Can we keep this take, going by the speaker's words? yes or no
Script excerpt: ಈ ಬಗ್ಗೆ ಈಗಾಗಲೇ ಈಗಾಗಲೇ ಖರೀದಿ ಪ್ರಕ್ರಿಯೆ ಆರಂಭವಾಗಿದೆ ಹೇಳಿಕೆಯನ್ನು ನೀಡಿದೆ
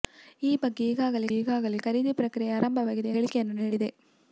yes